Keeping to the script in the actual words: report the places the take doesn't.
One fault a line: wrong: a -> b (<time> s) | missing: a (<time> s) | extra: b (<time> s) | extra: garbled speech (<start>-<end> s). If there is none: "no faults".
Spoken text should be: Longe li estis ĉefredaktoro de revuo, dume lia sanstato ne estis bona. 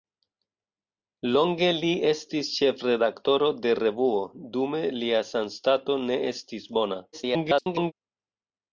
extra: garbled speech (7.1-7.9 s)